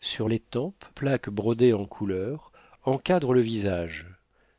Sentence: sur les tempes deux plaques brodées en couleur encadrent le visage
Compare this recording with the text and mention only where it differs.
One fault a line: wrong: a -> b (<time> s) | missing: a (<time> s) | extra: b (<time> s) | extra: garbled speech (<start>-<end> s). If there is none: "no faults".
missing: deux (0.8 s)